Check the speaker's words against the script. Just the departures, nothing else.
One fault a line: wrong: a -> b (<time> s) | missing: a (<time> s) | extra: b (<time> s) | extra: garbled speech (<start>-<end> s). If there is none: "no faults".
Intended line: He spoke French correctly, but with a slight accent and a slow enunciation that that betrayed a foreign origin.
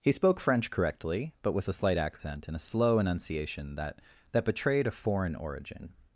no faults